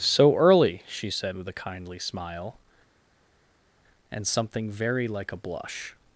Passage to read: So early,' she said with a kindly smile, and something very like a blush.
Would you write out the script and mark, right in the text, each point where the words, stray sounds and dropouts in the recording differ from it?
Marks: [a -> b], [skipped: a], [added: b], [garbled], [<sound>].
So early,' she said with a kindly smile, and something very like a blush.